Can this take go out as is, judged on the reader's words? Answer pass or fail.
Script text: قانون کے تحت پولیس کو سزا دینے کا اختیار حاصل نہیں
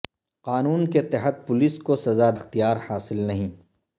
fail